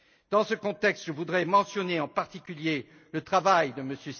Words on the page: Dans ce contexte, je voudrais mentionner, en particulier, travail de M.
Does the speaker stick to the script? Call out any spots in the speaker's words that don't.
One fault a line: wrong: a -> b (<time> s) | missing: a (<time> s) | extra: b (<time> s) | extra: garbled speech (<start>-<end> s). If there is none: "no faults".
extra: le (3.1 s)